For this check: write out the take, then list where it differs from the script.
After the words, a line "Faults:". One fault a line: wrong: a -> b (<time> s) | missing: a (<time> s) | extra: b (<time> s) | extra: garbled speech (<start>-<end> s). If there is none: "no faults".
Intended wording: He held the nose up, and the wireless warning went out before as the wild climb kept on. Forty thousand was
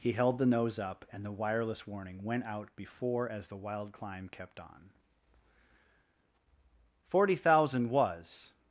He held the nose up, and the wireless warning went out before as the wild climb kept on. Forty thousand was
Faults:
no faults